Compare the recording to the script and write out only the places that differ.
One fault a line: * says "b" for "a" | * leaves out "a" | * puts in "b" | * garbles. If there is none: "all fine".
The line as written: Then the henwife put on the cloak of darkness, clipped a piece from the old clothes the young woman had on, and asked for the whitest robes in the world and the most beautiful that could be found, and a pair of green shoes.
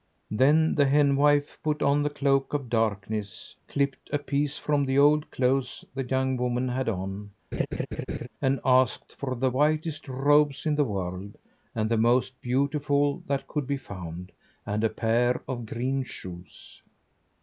all fine